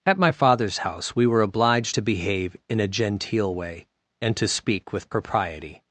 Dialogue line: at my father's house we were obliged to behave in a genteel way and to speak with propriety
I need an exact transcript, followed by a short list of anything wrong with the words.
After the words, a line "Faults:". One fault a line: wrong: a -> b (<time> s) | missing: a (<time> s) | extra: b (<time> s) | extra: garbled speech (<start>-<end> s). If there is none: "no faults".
at my father's house we were obliged to behave in a genteel way and to speak with propriety
Faults:
no faults